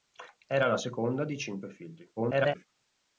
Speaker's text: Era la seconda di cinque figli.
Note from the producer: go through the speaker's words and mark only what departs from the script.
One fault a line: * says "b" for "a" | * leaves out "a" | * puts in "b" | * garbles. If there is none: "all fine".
* garbles